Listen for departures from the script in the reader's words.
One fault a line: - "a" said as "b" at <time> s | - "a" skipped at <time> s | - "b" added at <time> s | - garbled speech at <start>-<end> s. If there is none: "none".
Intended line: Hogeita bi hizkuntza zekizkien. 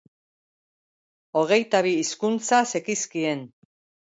none